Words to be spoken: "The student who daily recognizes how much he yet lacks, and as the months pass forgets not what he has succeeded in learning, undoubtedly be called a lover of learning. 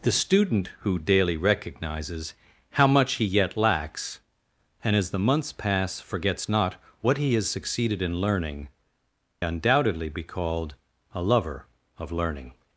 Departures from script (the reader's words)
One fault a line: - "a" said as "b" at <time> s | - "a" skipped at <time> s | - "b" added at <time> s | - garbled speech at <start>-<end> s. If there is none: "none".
none